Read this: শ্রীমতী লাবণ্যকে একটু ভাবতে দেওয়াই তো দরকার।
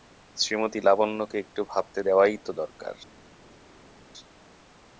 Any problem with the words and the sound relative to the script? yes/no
no